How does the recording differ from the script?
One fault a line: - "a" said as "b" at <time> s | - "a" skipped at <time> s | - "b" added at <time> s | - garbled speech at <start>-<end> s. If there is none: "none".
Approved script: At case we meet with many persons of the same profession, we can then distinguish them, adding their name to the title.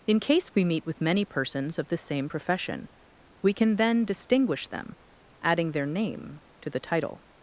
- "At" said as "In" at 0.1 s